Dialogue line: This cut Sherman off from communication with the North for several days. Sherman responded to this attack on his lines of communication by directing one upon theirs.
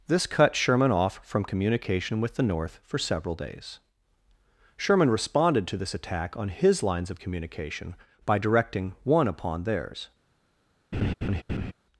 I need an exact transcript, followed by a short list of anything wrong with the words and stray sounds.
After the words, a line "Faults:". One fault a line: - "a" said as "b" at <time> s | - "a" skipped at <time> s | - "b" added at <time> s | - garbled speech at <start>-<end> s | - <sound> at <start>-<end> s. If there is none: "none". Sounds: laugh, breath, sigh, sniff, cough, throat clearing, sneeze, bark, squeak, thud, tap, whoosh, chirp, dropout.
This cut Sherman off from communication with the North for several days. Sherman responded to this attack on his lines of communication by directing one upon theirs.
Faults:
- laugh at 10.9-11.7 s